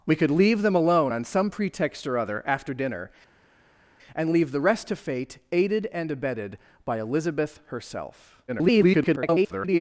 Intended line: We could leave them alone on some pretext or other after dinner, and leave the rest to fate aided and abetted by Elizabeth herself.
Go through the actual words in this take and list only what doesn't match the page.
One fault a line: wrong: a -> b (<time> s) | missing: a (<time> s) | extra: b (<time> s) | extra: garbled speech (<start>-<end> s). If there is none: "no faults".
extra: garbled speech (8.5-9.8 s)